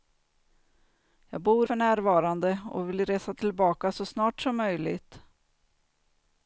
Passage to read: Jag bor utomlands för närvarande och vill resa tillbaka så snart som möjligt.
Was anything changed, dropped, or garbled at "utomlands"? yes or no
yes